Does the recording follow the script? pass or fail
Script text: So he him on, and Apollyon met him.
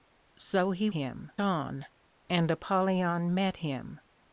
pass